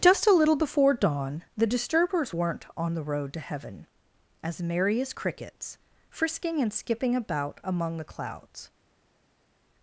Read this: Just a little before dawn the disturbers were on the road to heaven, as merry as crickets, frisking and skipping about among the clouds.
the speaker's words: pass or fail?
fail